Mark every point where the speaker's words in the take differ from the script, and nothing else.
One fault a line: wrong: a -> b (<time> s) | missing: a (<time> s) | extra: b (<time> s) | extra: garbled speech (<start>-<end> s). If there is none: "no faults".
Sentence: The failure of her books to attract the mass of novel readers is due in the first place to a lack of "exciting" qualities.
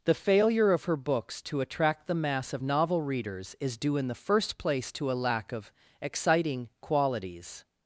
no faults